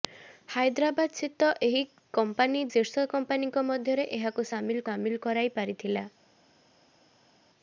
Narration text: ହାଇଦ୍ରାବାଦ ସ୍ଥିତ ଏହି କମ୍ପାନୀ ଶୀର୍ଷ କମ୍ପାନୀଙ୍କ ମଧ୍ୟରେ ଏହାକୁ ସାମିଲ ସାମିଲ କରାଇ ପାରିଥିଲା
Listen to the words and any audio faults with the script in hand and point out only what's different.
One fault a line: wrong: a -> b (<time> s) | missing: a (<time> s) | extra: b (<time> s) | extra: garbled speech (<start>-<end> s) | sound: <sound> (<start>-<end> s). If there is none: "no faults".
no faults